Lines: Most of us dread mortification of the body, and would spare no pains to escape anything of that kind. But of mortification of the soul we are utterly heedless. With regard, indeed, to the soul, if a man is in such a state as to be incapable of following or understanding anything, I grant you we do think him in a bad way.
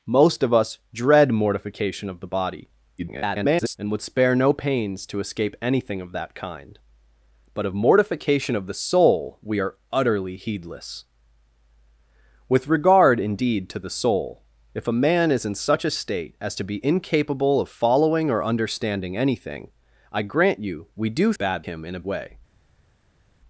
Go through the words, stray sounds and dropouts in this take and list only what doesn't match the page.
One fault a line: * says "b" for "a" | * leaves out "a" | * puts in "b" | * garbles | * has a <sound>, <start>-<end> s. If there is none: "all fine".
* garbles
* says "bad" for "think"
* leaves out "bad"